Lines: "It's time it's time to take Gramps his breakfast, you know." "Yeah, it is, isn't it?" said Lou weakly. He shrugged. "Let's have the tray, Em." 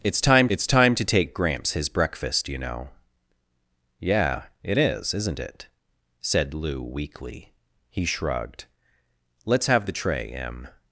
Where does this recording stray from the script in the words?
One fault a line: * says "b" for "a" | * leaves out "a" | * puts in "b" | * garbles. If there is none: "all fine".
all fine